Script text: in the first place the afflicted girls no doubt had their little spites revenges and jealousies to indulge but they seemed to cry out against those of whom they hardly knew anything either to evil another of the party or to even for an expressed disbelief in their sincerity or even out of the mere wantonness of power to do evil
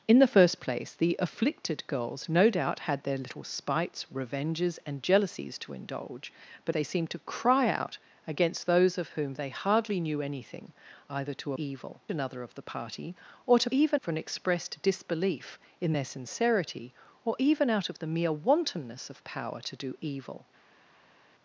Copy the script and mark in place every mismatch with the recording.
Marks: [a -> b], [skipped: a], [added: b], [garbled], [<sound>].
in the first place the afflicted girls no doubt had their little spites revenges and jealousies to indulge but they seemed to cry out against those of whom they hardly knew anything either to evil another of the party or to even for an expressed disbelief in their sincerity or even out of the mere wantonness of power to do evil